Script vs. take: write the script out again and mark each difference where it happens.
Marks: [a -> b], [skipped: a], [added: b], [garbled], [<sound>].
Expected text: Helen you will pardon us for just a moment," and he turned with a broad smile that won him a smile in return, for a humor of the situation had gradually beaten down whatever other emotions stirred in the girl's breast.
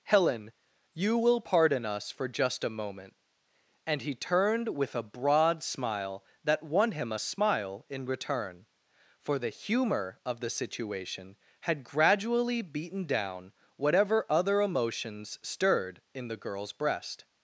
Helen you will pardon us for just a moment," and he turned with a broad smile that won him a smile in return, for [a -> the] humor of the situation had gradually beaten down whatever other emotions stirred in the girl's breast.